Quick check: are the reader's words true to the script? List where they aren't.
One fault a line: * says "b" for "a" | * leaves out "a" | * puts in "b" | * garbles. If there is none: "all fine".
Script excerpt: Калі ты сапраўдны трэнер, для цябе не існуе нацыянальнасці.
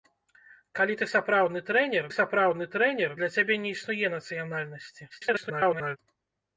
* puts in "сапраўдны трэнер"
* garbles